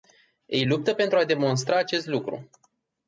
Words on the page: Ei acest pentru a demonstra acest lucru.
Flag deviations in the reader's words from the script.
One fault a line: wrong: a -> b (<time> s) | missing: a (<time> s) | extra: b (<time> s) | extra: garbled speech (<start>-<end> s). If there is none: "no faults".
wrong: acest -> luptă (0.7 s)